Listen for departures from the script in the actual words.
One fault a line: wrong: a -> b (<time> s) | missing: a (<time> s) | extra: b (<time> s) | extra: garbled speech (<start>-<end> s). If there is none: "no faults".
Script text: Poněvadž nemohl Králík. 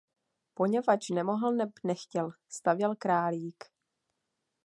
extra: neb nechtěl stavěl (1.5 s)